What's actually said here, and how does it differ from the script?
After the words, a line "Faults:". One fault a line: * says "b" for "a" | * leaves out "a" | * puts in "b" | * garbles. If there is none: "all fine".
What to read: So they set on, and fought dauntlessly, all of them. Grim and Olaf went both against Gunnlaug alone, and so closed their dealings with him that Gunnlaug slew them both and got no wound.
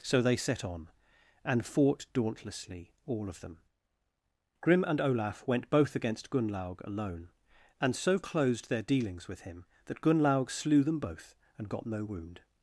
So they set on, and fought dauntlessly, all of them. Grim and Olaf went both against Gunnlaug alone, and so closed their dealings with him that Gunnlaug slew them both and got no wound.
Faults:
all fine